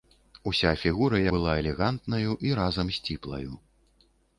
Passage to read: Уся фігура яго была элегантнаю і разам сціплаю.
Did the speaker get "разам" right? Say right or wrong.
right